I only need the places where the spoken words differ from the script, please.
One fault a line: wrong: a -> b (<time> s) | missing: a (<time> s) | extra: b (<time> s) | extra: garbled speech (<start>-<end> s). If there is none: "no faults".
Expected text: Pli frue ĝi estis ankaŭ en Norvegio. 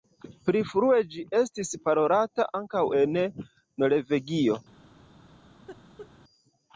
extra: parolata (1.9 s)